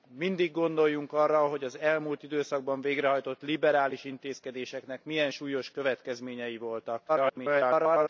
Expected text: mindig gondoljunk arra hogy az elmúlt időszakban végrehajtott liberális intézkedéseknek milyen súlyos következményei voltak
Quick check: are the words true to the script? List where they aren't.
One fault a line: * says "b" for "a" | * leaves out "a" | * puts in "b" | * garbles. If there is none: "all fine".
* garbles